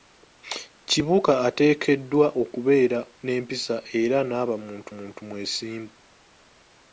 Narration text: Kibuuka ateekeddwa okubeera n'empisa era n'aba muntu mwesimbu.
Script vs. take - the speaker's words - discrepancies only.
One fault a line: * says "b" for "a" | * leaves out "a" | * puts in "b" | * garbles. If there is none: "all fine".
* puts in "muntu"